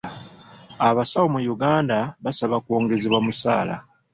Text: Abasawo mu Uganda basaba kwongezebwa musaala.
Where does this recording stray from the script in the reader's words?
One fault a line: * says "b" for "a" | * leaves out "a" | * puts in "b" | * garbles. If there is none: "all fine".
all fine